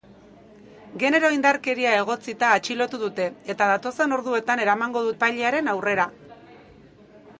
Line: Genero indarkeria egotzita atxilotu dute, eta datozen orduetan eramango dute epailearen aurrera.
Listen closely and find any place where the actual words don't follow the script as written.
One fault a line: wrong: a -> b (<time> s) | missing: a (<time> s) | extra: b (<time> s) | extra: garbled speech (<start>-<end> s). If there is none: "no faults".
missing: dute (5.1 s)